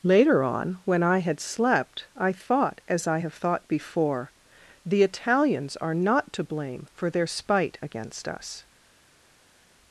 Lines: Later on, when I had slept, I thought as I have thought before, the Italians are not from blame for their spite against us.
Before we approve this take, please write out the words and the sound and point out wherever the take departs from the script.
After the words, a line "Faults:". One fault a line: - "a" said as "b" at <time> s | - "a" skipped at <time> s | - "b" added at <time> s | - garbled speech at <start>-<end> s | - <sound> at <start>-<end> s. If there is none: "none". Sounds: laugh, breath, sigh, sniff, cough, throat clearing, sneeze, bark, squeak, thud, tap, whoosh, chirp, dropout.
Later on, when I had slept, I thought as I have thought before, the Italians are not to blame for their spite against us.
Faults:
- "from" said as "to" at 6.3 s